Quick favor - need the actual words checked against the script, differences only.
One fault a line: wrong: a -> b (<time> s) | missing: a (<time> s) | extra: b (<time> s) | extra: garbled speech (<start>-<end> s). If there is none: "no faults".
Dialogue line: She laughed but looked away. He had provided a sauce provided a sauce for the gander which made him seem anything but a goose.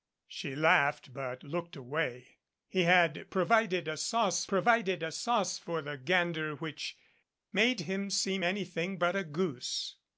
no faults